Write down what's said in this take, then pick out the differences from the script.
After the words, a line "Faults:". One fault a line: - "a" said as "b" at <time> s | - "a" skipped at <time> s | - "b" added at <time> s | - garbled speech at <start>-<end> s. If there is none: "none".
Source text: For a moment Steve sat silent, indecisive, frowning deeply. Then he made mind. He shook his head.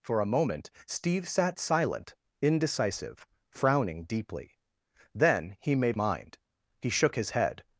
For a moment Steve sat silent, indecisive, frowning deeply. Then he made mind. He shook his head.
Faults:
none